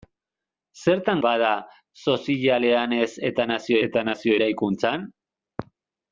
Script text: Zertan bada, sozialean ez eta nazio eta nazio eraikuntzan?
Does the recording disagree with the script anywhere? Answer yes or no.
no